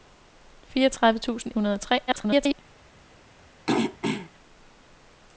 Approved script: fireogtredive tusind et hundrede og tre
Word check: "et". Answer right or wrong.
wrong